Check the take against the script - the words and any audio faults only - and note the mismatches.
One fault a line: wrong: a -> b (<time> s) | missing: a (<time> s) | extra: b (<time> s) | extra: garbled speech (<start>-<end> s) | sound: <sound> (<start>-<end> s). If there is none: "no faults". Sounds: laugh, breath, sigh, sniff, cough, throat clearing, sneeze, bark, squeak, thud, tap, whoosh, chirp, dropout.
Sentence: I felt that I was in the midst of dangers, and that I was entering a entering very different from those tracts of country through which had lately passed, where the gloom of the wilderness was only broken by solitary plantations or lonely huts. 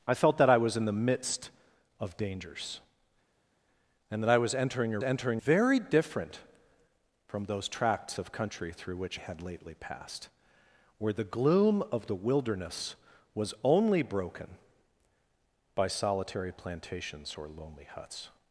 no faults